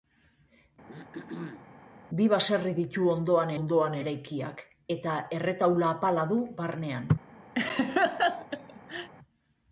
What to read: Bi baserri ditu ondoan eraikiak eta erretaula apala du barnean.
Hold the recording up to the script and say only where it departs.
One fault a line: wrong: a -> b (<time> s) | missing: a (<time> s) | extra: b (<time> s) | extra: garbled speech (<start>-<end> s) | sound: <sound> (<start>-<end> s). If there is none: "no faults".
sound: throat clearing (0.9-1.7 s)
extra: ondoan (3.6 s)
sound: laugh (7.6-9.1 s)